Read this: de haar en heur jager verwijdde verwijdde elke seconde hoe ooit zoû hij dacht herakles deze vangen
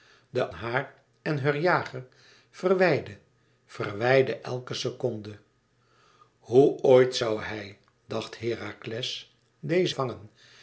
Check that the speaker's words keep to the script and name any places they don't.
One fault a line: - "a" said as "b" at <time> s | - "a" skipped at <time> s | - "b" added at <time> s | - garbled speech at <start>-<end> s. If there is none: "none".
none